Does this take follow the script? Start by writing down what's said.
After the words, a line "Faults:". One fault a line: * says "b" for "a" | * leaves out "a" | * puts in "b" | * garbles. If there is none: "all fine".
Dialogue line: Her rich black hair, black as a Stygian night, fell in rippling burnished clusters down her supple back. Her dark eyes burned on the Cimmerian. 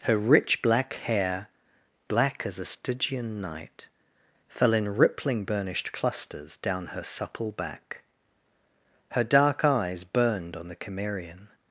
Her rich black hair, black as a Stygian night, fell in rippling burnished clusters down her supple back. Her dark eyes burned on the Cimmerian.
Faults:
all fine